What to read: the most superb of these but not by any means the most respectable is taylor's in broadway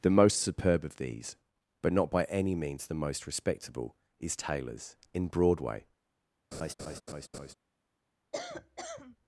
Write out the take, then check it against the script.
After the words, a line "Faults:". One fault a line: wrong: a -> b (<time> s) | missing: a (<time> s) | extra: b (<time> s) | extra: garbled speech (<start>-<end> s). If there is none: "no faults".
the most superb of these but not by any means the most respectable is taylor's in broadway
Faults:
no faults